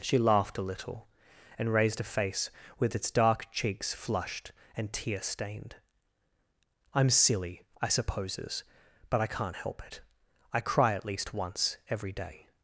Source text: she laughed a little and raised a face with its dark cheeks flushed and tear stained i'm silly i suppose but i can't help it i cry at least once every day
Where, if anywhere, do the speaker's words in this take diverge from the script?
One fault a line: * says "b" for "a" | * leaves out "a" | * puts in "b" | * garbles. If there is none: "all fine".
* says "supposes" for "suppose"